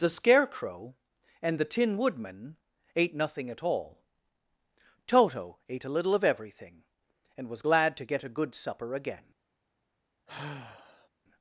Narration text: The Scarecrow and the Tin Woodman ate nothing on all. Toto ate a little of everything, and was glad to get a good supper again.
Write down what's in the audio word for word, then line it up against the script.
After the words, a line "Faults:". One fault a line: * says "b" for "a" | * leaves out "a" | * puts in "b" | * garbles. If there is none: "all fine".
The Scarecrow and the Tin Woodman ate nothing at all. Toto ate a little of everything, and was glad to get a good supper again.
Faults:
* says "at" for "on"